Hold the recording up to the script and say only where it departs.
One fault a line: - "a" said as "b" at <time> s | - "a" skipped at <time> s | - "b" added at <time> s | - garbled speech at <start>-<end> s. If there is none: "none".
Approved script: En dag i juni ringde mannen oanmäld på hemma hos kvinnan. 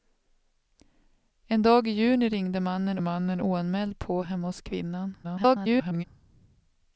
- "mannen" added at 3.0 s
- garbled speech at 5.2-6.0 s